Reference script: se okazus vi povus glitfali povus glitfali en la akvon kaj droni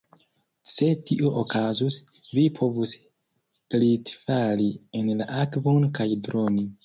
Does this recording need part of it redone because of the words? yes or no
yes